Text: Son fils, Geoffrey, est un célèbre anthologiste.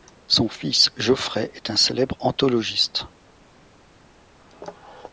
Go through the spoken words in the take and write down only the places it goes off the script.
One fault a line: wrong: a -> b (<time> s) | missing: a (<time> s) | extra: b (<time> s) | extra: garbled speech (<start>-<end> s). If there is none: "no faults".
no faults